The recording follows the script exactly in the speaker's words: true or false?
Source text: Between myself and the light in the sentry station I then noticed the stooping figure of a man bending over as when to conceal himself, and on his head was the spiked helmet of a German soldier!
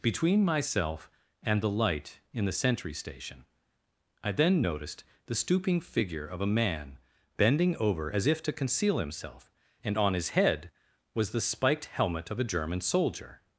false